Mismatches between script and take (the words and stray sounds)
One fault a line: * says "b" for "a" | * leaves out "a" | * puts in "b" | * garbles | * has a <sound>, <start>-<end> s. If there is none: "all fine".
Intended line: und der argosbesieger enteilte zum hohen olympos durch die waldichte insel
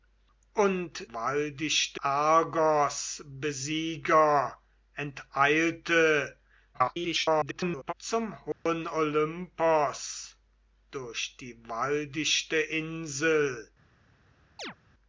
* says "waldichte" for "der"
* garbles
* has a dropout, 8.5-8.7 s
* has a chirp, 14.6-14.7 s